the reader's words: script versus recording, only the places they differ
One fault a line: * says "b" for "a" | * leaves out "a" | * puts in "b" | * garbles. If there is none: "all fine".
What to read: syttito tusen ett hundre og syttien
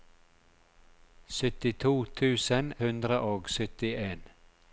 * leaves out "ett"